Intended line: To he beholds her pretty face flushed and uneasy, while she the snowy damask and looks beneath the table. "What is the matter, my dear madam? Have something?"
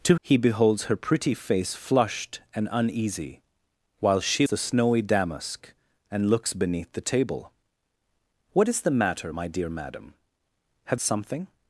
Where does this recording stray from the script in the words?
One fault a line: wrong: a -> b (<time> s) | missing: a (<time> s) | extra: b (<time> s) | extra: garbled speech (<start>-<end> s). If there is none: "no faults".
no faults